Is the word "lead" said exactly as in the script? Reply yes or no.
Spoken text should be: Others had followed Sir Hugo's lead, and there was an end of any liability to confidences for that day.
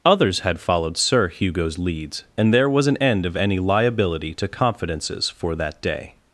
no